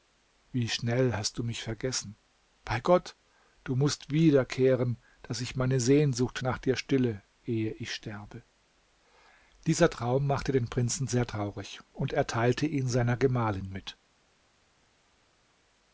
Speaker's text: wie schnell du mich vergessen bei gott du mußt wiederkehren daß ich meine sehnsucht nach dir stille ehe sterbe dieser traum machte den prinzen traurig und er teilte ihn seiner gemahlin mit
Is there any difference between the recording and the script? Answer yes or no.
yes